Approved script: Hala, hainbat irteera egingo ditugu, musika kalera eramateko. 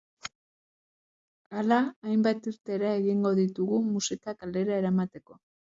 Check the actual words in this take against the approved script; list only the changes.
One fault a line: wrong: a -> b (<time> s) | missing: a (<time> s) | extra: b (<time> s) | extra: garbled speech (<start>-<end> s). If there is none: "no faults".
no faults